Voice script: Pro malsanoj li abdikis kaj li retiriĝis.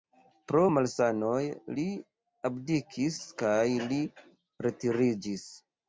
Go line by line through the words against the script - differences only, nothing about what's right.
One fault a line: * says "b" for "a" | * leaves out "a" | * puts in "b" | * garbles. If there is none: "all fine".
all fine